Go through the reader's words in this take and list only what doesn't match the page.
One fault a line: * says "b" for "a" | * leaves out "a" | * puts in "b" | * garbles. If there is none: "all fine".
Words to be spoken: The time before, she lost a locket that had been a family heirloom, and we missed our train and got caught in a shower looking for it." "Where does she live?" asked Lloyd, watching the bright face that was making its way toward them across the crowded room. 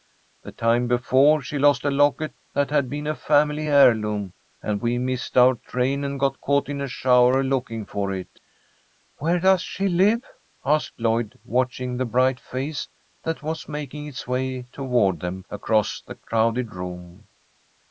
all fine